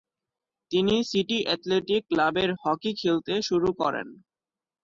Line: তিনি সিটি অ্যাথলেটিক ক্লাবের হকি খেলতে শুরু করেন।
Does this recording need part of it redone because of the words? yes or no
no